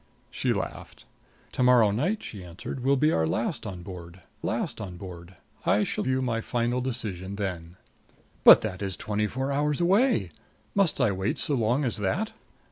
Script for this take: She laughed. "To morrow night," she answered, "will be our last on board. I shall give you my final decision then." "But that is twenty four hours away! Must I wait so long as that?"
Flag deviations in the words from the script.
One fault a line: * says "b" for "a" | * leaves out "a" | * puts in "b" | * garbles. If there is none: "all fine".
* puts in "last on board"
* leaves out "give"